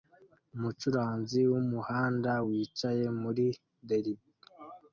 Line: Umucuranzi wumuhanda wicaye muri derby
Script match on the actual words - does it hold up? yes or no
yes